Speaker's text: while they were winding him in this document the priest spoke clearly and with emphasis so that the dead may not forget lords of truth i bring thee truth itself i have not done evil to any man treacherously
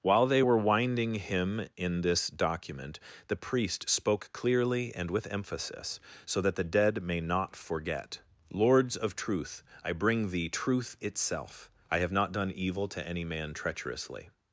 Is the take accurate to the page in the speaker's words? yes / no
yes